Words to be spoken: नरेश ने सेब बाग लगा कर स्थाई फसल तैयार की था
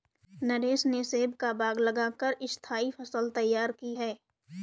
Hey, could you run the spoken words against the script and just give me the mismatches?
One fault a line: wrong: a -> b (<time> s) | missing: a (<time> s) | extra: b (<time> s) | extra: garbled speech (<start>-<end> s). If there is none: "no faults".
extra: का (1.4 s)
wrong: था -> है (3.9 s)